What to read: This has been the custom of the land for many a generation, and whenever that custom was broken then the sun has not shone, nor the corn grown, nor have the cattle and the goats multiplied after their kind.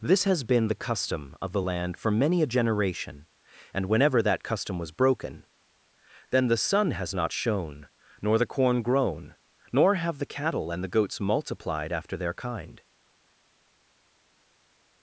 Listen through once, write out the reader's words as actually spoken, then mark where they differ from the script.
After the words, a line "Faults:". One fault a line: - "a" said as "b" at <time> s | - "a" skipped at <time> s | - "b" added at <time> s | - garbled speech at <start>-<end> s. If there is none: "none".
This has been the custom of the land for many a generation, and whenever that custom was broken then the sun has not shone, nor the corn grown, nor have the cattle and the goats multiplied after their kind.
Faults:
none